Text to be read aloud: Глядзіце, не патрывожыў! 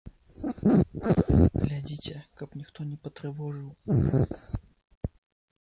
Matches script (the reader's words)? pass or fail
fail